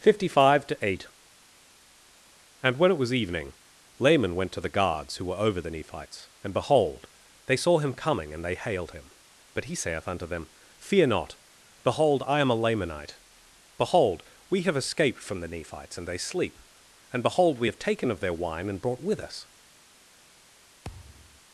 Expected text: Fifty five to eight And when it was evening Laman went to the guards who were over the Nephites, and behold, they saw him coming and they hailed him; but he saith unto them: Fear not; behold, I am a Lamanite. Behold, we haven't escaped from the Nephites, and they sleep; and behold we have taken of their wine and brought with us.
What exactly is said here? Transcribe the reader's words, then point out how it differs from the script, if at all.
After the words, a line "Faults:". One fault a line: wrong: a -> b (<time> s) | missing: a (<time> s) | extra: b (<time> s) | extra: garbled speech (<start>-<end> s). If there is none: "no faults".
Fifty five to eight And when it was evening Laman went to the guards who were over the Nephites, and behold, they saw him coming and they hailed him; but he saith unto them: Fear not; behold, I am a Lamanite. Behold, we have escaped from the Nephites, and they sleep; and behold we have taken of their wine and brought with us.
Faults:
wrong: haven't -> have (14.6 s)